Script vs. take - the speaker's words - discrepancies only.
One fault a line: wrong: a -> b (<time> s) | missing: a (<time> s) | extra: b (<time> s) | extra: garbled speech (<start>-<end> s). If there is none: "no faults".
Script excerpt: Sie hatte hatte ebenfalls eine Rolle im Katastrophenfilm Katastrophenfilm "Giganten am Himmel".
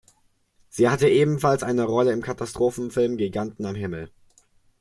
missing: hatte (1.1 s)
missing: Katastrophenfilm (3.2 s)